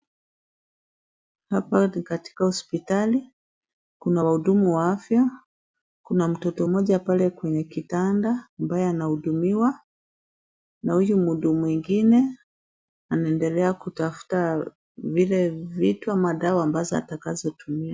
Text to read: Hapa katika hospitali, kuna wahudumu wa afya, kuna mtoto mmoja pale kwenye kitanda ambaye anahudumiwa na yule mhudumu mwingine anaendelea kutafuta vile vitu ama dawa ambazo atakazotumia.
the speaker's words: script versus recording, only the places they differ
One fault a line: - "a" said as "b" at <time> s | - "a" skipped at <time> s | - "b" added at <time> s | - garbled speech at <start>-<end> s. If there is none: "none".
- "ni" added at 1.9 s
- "yule" said as "huyu" at 10.9 s